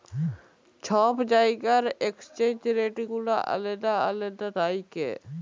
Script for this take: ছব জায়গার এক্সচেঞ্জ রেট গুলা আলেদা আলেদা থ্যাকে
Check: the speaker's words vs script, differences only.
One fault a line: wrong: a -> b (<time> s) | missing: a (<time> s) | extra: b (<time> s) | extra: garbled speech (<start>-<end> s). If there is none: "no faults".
no faults